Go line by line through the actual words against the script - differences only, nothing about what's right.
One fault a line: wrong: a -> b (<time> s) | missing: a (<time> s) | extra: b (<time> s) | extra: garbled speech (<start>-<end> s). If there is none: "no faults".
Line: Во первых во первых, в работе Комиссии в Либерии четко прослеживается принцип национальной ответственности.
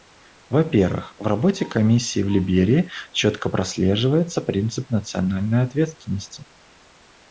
missing: во первых (1.1 s)